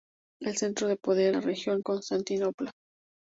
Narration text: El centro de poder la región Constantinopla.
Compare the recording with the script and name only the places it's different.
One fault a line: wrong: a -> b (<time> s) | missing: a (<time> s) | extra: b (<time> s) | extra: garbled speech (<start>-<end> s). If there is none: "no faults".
no faults